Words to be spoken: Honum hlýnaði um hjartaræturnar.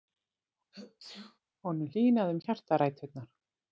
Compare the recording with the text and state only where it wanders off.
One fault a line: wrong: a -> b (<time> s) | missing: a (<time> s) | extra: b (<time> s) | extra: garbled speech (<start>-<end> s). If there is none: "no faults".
no faults